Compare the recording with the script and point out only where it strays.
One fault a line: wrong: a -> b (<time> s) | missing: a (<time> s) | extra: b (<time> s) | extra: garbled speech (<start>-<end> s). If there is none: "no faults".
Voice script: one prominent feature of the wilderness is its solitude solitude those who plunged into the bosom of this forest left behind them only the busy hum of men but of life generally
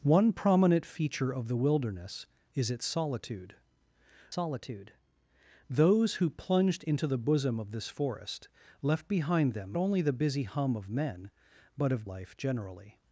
no faults